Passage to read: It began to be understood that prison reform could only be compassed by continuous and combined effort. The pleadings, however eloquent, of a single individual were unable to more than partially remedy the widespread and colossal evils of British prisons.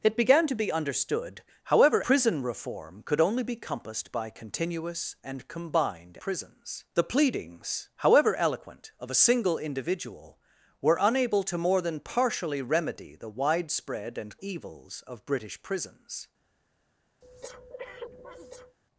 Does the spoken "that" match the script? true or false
false